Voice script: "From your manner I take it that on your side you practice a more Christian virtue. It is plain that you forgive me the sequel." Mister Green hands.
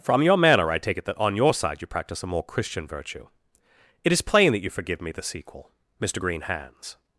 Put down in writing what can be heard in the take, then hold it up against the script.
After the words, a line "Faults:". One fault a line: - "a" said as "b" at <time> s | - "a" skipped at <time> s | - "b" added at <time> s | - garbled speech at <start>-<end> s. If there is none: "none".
"From your manner I take it that on your side you practice a more Christian virtue. It is plain that you forgive me the sequel." Mister Green hands.
Faults:
none